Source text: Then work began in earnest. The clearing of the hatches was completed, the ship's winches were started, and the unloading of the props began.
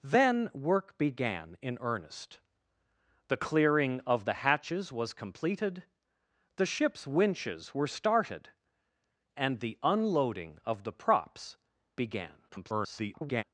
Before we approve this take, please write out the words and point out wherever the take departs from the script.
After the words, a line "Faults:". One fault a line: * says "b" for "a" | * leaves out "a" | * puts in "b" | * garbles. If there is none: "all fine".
Then work began in earnest. The clearing of the hatches was completed, the ship's winches were started, and the unloading of the props began. [garbled]
Faults:
* garbles